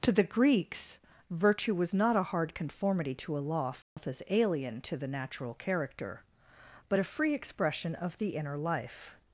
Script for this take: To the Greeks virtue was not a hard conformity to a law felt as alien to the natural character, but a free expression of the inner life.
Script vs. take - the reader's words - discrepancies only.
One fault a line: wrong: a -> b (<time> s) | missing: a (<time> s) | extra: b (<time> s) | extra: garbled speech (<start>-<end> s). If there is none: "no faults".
no faults